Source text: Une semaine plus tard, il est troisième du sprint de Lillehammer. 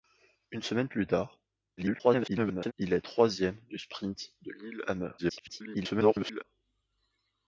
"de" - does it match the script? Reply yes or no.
yes